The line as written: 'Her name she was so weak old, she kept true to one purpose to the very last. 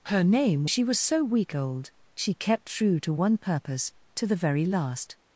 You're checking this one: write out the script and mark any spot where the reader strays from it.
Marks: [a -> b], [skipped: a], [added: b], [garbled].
'Her name she was so weak old, she kept true to one purpose to the very last.